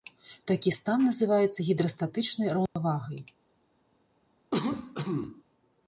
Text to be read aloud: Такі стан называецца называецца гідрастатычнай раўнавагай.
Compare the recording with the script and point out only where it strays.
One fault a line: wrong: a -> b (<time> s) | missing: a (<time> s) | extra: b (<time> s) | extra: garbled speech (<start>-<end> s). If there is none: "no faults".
missing: называецца (1.7 s)